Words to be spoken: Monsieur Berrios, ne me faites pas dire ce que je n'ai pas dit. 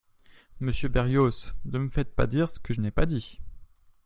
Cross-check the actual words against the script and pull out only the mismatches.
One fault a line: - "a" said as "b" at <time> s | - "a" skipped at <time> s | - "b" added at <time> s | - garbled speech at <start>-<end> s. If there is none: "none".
none